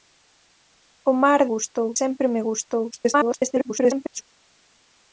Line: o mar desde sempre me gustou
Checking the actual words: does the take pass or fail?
fail